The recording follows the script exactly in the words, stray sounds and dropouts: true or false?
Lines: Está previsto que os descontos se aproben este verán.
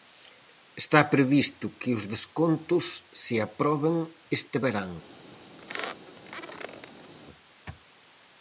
false